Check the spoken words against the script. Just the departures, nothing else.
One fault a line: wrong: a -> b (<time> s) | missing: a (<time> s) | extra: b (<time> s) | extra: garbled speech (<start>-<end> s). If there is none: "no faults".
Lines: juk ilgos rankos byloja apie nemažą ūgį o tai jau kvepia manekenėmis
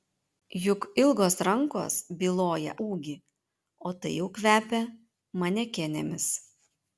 missing: apie nemažą (2.7 s)